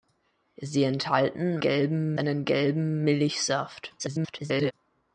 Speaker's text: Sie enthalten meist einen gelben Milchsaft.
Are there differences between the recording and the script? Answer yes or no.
yes